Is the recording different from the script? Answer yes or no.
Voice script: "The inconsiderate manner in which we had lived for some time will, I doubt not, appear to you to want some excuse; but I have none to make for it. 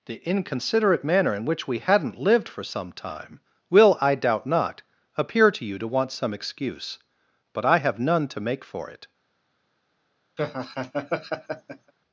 yes